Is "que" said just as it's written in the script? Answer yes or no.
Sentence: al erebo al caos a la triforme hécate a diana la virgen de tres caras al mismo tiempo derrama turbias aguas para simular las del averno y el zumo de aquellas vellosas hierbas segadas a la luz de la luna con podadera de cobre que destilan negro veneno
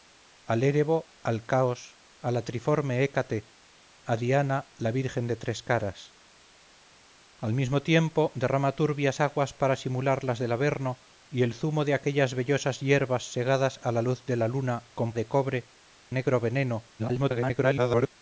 no